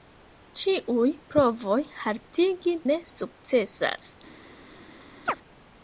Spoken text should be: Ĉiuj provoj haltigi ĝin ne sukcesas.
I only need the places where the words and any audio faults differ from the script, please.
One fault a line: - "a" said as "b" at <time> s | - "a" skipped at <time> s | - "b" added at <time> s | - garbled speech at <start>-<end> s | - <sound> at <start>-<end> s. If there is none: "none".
- "ĝin" skipped at 2.8 s
- chirp at 5.3-5.4 s